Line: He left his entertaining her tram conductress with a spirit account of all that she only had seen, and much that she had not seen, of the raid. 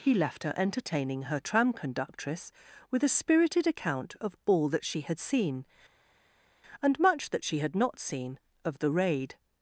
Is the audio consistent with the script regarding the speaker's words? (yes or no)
no